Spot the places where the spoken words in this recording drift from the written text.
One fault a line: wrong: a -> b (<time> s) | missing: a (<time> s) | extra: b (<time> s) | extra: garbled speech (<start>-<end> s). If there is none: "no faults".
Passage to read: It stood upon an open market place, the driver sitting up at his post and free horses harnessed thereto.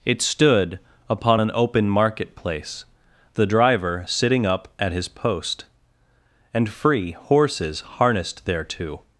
no faults